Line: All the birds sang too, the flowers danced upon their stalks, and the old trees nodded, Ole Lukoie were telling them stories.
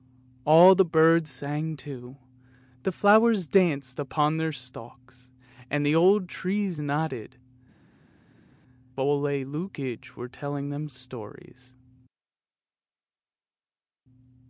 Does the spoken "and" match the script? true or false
true